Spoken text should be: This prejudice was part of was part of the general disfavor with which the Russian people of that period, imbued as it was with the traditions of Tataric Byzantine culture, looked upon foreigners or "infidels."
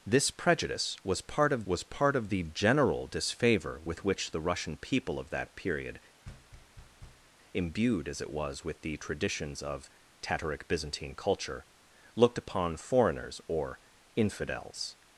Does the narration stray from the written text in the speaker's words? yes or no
no